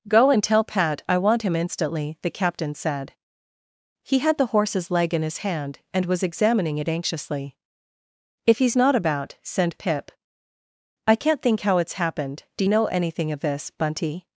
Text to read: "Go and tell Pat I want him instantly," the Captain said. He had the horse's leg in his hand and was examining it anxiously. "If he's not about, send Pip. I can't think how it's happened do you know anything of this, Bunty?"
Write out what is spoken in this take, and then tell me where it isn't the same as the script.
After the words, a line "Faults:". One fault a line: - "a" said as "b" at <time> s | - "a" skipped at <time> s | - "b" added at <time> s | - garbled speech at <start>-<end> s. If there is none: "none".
"Go and tell Pat I want him instantly," the Captain said. He had the horse's leg in his hand and was examining it anxiously. "If he's not about, send Pip. I can't think how it's happened do know anything of this, Bunty?"
Faults:
- "you" skipped at 12.6 s